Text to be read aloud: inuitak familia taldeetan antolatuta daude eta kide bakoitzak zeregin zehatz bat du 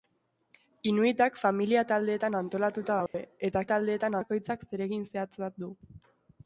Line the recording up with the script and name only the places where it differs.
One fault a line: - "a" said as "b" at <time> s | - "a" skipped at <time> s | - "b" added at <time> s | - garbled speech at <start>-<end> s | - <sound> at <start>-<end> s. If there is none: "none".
- dropout at 3.1-3.1 s
- "kide" said as "taldeetan" at 3.7 s